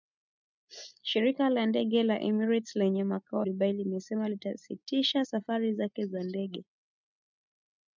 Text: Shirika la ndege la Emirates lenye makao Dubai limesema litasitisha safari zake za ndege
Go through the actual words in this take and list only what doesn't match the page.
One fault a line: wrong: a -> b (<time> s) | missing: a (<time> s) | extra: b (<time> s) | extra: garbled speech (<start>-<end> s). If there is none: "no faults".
no faults